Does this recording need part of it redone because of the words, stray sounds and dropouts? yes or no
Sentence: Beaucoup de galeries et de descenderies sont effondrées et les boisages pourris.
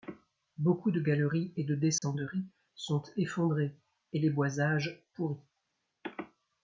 yes